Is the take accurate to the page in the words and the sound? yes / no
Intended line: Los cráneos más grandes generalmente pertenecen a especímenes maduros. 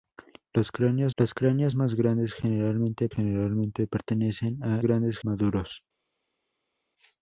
no